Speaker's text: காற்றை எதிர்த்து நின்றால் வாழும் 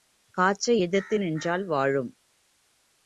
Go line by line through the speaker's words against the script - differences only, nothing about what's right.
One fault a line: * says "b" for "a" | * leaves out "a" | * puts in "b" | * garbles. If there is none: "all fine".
all fine